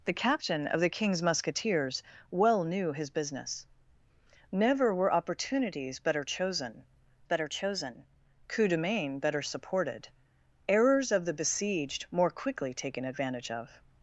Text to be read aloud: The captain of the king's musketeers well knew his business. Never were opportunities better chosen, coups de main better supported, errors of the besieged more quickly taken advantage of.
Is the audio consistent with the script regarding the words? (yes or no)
no